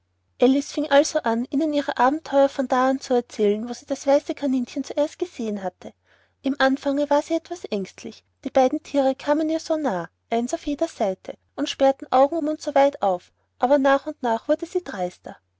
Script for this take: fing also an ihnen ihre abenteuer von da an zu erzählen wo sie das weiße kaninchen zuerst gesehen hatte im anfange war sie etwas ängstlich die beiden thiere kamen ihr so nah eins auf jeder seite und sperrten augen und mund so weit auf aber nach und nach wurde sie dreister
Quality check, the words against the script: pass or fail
fail